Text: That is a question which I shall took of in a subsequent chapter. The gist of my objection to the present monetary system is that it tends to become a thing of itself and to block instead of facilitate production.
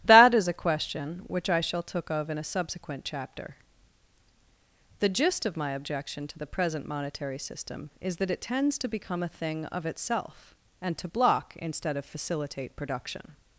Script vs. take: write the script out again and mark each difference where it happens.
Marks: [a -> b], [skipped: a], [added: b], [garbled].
That is a question which I shall took of in a subsequent chapter. The gist of my objection to the present monetary system is that it tends to become a thing of itself and to block instead of facilitate production.